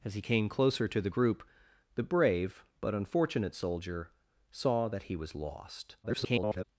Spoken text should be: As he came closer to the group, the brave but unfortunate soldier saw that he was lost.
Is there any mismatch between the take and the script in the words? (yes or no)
yes